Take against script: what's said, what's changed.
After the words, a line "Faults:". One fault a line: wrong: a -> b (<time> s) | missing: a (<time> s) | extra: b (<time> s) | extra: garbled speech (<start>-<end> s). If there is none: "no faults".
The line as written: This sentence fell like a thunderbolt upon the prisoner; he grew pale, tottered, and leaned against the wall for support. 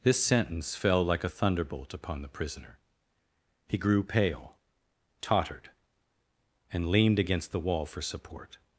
This sentence fell like a thunderbolt upon the prisoner; he grew pale, tottered, and leaned against the wall for support.
Faults:
no faults